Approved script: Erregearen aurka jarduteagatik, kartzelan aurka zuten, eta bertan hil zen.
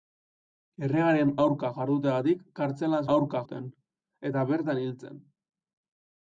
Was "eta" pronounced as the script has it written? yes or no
yes